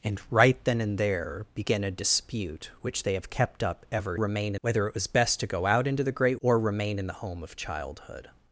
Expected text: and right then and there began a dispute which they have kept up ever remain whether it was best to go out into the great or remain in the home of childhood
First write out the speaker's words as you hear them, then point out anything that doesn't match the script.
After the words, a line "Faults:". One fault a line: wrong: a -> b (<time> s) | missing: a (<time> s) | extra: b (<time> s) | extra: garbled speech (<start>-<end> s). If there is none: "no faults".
and right then and there began a dispute which they have kept up ever remain whether it was best to go out into the great or remain in the home of childhood
Faults:
no faults